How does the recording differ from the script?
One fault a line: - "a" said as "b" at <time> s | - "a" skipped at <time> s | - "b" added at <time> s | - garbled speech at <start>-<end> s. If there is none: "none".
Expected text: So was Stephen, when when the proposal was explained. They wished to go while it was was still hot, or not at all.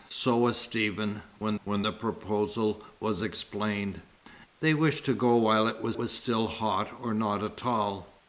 none